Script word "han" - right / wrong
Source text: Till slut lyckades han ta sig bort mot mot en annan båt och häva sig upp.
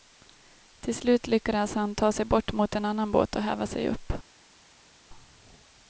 right